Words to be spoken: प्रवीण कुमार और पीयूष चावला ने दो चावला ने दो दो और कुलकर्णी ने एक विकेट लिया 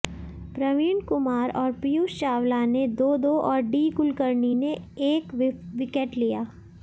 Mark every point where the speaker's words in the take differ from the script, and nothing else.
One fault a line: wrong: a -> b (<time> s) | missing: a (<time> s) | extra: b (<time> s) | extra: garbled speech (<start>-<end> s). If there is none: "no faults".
missing: चावला ने (3.1 s)
wrong: दो और -> और डी (3.4 s)